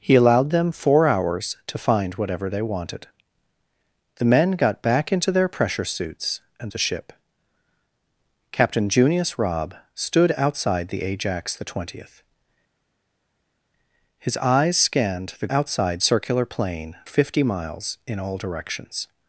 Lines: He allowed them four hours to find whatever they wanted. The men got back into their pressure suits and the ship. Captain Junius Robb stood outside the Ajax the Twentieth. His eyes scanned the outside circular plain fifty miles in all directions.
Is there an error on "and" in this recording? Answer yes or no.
no